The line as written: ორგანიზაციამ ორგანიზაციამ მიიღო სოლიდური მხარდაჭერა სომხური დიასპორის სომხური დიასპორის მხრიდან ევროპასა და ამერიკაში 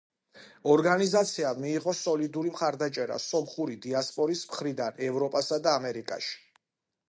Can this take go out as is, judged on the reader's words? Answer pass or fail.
fail